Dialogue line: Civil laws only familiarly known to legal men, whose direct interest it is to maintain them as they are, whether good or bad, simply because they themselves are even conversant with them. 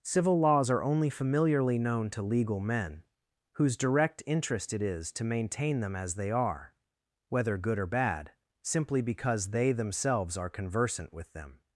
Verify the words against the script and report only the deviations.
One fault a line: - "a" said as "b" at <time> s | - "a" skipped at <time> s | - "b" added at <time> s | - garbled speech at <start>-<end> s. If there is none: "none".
- "are" added at 0.7 s
- "even" skipped at 10.5 s